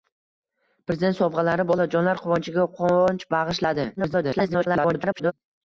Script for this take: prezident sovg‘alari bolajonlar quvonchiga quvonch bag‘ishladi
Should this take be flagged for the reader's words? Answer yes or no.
yes